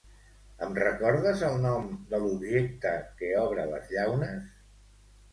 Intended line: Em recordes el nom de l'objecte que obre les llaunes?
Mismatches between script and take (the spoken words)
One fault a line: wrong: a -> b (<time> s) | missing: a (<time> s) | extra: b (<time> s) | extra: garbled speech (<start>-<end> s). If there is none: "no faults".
no faults